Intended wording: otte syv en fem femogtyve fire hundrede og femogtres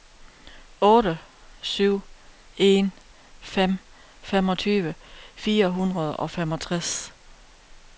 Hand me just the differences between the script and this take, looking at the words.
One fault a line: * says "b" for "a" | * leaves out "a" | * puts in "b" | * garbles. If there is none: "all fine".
all fine